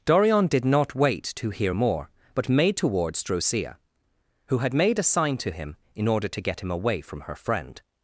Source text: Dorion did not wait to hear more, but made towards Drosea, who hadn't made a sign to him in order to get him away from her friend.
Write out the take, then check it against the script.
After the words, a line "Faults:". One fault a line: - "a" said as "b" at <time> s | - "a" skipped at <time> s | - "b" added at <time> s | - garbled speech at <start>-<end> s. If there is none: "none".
Dorion did not wait to hear more, but made towards Drosea, who had made a sign to him in order to get him away from her friend.
Faults:
- "hadn't" said as "had" at 4.6 s